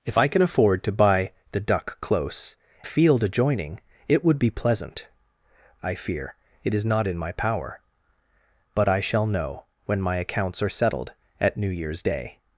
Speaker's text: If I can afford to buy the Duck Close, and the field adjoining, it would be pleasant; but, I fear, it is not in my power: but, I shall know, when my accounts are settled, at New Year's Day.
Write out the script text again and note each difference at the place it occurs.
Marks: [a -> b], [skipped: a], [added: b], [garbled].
If I can afford to buy the Duck Close, [skipped: and] the field adjoining, it would be pleasant; [skipped: but,] I fear, it is not in my power: but, I shall know, when my accounts are settled, at New Year's Day.